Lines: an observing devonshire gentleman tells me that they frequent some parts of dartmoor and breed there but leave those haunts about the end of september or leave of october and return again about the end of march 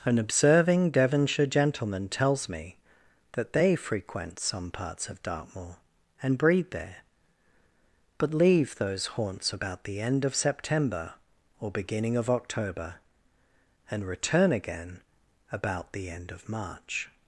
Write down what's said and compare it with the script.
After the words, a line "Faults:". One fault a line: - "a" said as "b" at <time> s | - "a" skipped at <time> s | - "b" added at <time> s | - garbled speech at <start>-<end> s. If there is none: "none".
an observing devonshire gentleman tells me that they frequent some parts of dartmoor and breed there but leave those haunts about the end of september or beginning of october and return again about the end of march
Faults:
- "leave" said as "beginning" at 11.7 s